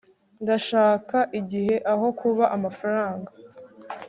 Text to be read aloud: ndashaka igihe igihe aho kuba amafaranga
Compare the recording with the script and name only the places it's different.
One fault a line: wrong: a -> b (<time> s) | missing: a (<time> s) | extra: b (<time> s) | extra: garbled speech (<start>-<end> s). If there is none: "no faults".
missing: igihe (1.8 s)